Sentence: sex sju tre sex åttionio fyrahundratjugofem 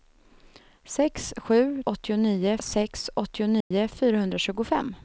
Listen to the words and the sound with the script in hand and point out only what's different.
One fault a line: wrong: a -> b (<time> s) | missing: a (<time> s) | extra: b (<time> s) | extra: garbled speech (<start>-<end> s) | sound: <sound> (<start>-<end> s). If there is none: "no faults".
wrong: tre -> åttionio (1.8 s)
sound: dropout (3.6-3.7 s)